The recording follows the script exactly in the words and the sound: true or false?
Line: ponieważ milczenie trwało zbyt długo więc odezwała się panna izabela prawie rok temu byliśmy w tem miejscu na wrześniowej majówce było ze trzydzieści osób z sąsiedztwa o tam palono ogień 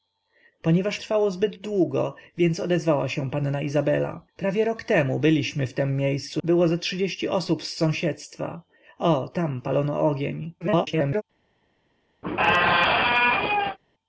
false